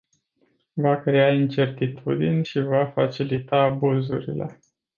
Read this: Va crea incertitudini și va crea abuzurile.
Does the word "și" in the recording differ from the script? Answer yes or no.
no